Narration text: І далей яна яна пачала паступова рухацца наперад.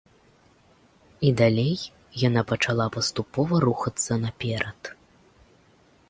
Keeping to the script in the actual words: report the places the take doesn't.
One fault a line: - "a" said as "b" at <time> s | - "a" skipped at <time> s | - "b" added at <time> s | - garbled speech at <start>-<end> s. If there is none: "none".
- "яна" skipped at 2.4 s